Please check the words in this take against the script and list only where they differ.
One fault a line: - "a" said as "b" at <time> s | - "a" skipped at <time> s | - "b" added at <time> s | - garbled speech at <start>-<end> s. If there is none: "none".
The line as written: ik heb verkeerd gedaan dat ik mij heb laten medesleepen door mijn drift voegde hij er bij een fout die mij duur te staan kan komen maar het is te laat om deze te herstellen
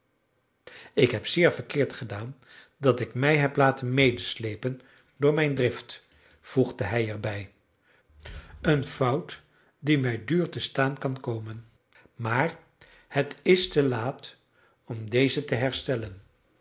- "zeer" added at 1.3 s